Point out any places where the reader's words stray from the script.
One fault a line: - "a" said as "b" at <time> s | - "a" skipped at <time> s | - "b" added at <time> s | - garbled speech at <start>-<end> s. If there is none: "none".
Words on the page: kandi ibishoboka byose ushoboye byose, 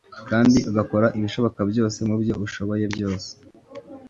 - "ugakora" added at 0.7 s
- "mubyo" added at 2.1 s